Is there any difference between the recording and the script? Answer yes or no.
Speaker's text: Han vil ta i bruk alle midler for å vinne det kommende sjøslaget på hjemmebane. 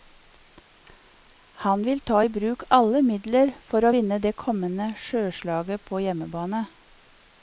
no